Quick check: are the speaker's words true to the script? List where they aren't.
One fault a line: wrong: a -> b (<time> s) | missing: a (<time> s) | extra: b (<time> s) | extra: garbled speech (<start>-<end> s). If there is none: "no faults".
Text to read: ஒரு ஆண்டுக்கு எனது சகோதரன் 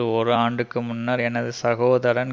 extra: முன்னர் (0.8 s)